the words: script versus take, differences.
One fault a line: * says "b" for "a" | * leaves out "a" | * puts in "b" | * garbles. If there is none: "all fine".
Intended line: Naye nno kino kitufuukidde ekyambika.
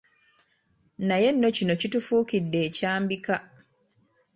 all fine